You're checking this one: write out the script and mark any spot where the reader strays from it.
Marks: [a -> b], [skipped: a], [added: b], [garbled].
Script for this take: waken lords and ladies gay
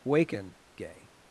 waken [skipped: lords and ladies] gay